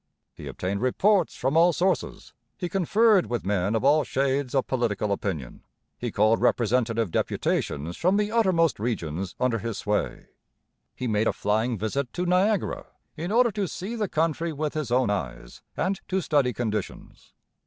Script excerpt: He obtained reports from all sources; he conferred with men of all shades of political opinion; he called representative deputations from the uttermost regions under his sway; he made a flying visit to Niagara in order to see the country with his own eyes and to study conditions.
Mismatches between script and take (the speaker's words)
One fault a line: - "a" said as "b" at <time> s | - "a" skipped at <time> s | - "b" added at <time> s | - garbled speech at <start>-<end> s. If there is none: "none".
none